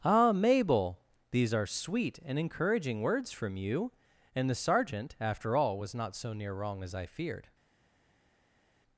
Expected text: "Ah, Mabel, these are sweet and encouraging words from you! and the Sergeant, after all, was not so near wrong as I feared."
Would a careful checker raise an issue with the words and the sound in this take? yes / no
no